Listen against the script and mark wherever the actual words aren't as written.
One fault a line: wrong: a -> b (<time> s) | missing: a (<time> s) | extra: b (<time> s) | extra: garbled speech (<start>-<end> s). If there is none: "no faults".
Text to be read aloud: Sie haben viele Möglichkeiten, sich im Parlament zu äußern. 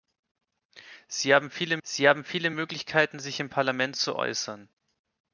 extra: sie haben viele (1.8 s)